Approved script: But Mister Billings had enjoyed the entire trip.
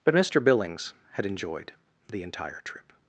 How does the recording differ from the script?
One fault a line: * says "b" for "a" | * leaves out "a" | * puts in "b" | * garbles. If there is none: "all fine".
all fine